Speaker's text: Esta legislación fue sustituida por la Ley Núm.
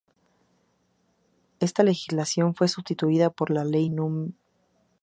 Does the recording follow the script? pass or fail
pass